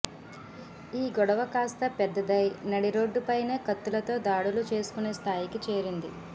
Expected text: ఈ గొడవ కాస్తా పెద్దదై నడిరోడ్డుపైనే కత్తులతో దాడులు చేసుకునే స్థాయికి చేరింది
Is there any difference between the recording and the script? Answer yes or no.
no